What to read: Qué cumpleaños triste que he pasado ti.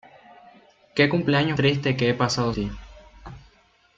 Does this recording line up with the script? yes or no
yes